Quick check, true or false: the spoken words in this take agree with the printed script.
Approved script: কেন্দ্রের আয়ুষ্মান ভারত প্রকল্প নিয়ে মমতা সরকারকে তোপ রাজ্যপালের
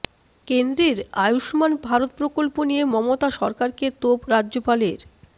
true